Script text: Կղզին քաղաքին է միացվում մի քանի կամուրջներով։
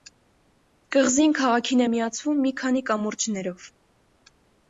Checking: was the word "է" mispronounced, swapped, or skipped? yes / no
no